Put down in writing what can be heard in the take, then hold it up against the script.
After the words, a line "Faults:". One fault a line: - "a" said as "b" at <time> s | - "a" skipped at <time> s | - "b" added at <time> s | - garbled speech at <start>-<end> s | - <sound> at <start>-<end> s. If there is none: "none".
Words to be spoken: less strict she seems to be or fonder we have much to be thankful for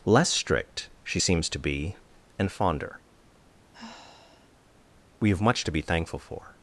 less strict she seems to be and fonder we have much to be thankful for
Faults:
- "or" said as "and" at 2.4 s
- sigh at 3.7-4.5 s